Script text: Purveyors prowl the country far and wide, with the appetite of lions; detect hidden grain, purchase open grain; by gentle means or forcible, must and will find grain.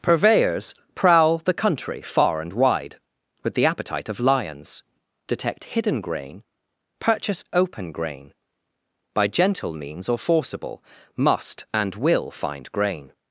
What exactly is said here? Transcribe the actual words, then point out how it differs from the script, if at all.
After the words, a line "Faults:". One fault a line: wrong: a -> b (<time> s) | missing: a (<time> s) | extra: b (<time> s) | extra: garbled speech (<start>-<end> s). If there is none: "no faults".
Purveyors prowl the country far and wide, with the appetite of lions; detect hidden grain, purchase open grain; by gentle means or forcible, must and will find grain.
Faults:
no faults